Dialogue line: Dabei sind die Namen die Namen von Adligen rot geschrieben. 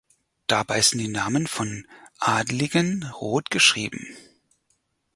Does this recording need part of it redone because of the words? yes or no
yes